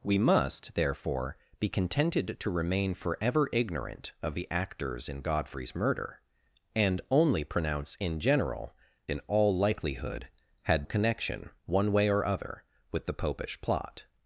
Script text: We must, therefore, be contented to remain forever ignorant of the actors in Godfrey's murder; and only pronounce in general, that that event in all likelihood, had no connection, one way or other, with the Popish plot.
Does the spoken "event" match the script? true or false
false